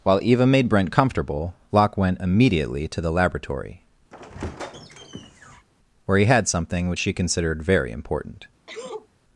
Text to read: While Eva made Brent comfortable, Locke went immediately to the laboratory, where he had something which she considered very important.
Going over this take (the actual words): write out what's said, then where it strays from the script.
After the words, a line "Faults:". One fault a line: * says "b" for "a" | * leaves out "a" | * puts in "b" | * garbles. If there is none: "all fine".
While Eva made Brent comfortable, Locke went immediately to the laboratory, where he had something which she considered very important.
Faults:
all fine